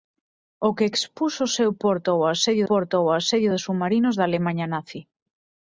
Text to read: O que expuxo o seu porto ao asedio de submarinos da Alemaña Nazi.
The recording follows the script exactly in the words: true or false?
false